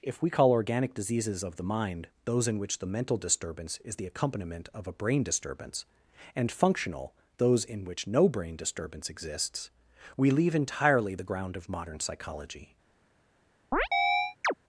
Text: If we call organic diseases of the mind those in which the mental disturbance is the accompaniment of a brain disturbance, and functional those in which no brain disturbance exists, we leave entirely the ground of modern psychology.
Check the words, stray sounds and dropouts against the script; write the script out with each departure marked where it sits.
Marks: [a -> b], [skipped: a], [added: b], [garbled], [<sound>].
If we call organic diseases of the mind those in which the mental disturbance is the accompaniment of a brain disturbance, and functional those in which no brain disturbance exists, we leave entirely the ground of modern psychology. [chirp]